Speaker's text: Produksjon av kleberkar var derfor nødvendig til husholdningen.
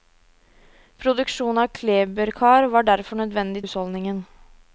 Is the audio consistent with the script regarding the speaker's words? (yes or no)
no